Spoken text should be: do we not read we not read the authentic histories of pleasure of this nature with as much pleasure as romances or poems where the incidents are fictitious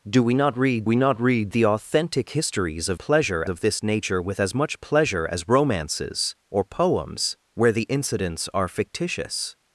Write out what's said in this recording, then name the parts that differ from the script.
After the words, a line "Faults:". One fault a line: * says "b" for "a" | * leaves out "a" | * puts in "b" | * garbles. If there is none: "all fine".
do we not read we not read the authentic histories of pleasure of this nature with as much pleasure as romances or poems where the incidents are fictitious
Faults:
all fine